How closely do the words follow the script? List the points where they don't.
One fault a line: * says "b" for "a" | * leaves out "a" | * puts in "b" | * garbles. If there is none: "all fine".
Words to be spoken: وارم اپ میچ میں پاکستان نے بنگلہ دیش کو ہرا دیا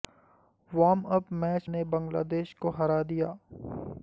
* leaves out "میں پاکستان"